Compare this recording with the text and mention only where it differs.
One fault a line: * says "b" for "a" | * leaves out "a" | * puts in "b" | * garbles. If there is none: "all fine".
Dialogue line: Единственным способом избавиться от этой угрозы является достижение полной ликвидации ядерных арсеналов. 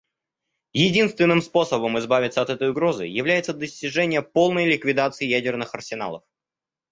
all fine